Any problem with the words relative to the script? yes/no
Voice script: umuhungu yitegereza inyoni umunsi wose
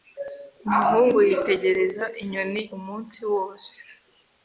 no